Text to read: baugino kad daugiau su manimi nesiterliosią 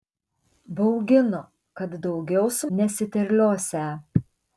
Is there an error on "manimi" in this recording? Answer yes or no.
yes